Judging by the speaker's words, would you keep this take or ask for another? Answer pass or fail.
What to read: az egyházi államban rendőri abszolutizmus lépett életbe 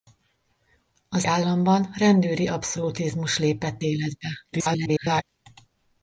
fail